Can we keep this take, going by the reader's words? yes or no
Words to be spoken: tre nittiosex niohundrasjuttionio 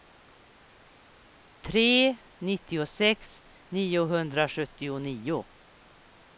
yes